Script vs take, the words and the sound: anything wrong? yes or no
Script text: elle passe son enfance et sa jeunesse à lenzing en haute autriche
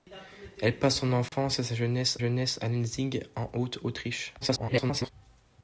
yes